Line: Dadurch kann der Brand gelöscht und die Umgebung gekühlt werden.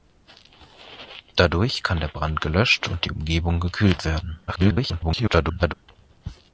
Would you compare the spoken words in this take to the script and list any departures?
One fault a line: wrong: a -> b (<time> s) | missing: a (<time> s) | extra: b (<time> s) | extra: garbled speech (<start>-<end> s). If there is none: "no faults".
extra: garbled speech (4.5-5.7 s)